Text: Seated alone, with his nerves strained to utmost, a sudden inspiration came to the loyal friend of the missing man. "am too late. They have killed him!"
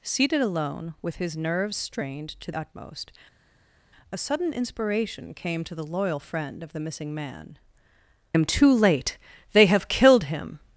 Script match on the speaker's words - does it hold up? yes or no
yes